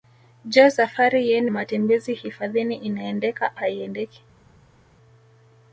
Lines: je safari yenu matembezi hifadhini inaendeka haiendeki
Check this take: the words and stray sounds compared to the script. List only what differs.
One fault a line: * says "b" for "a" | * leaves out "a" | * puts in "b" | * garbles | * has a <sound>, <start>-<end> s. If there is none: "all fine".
all fine